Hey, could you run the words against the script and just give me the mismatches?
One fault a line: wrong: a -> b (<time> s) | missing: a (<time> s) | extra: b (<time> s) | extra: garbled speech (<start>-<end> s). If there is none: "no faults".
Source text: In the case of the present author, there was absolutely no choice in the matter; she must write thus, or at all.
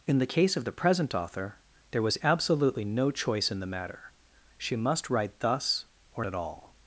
no faults